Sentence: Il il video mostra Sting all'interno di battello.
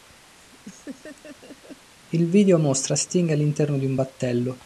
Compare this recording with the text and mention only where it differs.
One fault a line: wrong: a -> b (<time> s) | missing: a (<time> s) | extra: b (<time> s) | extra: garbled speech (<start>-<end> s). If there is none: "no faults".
missing: il (2.3 s)
extra: un (3.8 s)